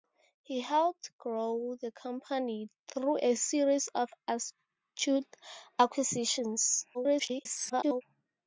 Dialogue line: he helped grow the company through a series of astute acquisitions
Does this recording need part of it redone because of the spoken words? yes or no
yes